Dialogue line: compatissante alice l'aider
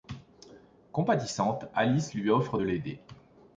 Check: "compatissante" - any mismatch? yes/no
no